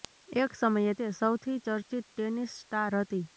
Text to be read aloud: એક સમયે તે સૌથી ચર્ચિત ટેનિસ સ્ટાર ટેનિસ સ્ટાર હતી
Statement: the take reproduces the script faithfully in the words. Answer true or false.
false